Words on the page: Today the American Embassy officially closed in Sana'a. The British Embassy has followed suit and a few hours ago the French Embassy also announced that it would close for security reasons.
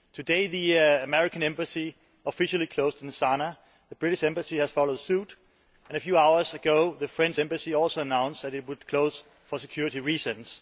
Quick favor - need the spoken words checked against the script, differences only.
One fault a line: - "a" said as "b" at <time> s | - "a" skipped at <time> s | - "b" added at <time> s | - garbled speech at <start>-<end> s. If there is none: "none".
none